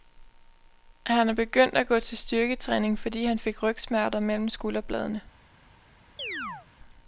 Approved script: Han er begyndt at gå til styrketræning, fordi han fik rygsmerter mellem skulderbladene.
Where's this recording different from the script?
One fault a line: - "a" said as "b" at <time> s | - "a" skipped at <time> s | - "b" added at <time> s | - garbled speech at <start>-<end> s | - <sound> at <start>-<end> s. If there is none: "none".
- chirp at 6.2-6.7 s